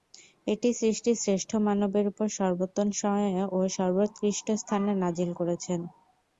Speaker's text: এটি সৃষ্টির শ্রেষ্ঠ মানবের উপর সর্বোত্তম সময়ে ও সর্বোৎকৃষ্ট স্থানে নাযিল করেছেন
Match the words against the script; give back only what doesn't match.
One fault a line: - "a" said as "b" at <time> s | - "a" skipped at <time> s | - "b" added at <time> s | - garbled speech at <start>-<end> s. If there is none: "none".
none